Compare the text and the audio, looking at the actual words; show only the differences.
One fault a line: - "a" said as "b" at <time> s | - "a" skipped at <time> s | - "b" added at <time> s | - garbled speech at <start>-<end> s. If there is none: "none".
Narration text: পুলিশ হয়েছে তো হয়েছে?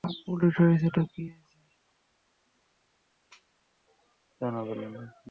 - "কী" added at 1.1 s